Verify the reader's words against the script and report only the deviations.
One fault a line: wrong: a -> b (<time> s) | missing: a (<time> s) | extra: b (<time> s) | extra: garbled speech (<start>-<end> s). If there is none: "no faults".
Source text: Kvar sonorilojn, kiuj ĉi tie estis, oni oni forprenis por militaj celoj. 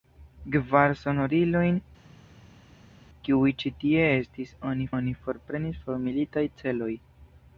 no faults